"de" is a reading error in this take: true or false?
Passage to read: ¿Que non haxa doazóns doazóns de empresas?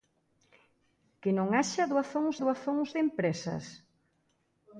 false